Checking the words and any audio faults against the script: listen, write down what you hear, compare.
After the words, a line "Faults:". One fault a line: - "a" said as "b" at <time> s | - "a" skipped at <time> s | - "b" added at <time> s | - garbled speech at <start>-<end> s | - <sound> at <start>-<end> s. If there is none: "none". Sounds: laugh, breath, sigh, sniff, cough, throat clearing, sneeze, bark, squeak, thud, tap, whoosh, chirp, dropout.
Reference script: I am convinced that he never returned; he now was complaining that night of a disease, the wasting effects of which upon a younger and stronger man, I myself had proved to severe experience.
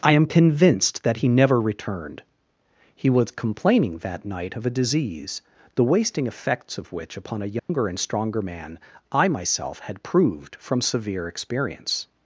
I am convinced that he never returned; he was complaining that night of a disease, the wasting effects of which upon a younger and stronger man, I myself had proved from severe experience.
Faults:
- "now" skipped at 3.1 s
- dropout at 7.6-7.7 s
- "to" said as "from" at 10.6 s